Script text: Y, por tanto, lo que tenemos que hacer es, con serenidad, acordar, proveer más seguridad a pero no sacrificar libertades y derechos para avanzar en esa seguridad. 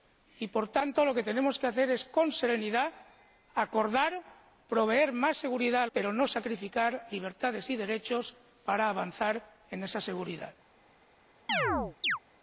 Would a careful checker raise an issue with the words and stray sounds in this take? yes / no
yes